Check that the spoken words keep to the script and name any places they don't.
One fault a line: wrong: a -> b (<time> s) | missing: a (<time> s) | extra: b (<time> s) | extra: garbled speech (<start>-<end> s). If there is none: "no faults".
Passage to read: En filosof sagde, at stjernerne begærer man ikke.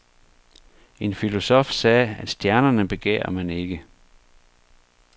no faults